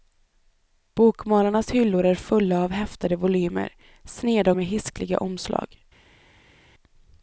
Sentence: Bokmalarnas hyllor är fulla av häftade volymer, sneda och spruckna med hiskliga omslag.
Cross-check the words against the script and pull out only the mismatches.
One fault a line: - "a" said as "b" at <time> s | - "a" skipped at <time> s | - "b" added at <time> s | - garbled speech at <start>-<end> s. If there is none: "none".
- "och spruckna" skipped at 4.5 s